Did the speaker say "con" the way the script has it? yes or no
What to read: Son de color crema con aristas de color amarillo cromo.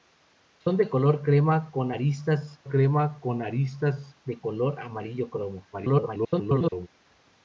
yes